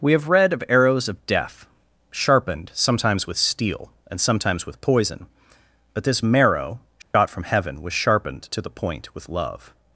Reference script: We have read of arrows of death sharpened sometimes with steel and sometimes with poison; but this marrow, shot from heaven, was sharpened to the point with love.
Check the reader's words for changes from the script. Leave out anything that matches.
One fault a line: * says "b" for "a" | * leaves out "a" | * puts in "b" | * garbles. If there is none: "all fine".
all fine